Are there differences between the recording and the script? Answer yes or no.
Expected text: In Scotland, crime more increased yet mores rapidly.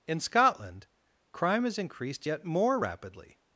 yes